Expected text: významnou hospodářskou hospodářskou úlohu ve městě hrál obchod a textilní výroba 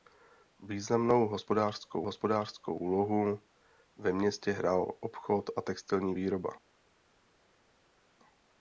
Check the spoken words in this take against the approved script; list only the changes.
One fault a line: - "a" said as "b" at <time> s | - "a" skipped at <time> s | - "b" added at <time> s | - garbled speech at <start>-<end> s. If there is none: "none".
none